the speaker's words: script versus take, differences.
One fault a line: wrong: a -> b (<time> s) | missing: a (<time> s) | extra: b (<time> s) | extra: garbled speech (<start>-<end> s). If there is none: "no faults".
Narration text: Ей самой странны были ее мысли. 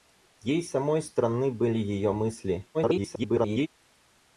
extra: garbled speech (2.7-3.7 s)